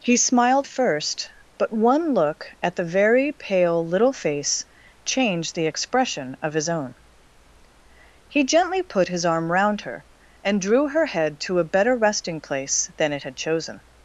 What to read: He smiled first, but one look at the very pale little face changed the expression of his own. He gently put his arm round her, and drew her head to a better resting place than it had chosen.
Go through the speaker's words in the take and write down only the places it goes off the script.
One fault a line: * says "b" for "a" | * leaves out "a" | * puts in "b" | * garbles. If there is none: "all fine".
all fine